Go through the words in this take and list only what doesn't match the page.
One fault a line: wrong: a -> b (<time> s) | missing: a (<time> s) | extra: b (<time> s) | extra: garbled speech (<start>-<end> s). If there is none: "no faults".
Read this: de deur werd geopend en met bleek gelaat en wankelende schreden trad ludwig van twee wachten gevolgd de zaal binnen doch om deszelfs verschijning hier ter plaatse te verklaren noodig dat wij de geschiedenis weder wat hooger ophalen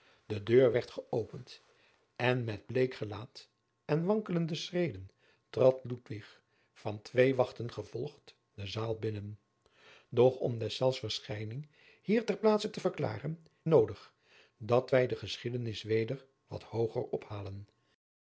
no faults